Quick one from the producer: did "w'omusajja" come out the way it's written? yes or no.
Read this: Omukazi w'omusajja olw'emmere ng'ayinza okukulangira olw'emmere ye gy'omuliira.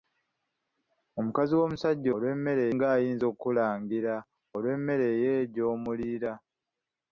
yes